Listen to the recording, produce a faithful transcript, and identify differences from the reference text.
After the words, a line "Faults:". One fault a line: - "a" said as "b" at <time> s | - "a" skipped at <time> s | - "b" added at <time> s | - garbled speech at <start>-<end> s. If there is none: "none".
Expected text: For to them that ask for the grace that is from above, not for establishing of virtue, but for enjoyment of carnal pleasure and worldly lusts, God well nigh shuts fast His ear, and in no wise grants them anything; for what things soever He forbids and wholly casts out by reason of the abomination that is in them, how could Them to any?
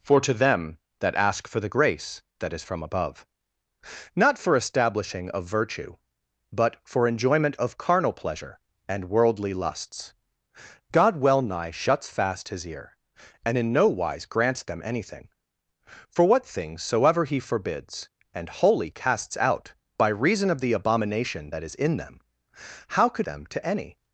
For to them that ask for the grace that is from above, not for establishing of virtue, but for enjoyment of carnal pleasure and worldly lusts, God well nigh shuts fast His ear, and in no wise grants them anything; for what things soever He forbids and wholly casts out by reason of the abomination that is in them, how could Them to any?
Faults:
none